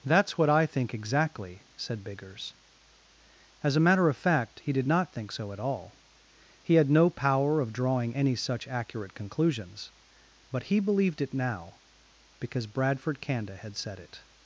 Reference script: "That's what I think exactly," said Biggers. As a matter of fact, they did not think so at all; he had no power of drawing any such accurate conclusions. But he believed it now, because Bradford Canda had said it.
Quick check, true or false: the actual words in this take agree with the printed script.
false